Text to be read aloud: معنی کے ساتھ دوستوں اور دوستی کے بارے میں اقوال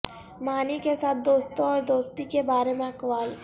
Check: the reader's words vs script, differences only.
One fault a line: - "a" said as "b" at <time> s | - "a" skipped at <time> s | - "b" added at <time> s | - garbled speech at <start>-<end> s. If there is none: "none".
none